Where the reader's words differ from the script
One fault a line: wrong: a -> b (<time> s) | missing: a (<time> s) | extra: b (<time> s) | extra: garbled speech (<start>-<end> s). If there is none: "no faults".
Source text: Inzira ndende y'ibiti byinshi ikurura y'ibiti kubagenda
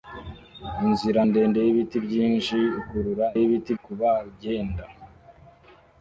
no faults